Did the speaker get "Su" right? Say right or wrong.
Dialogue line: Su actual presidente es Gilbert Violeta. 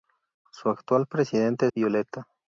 right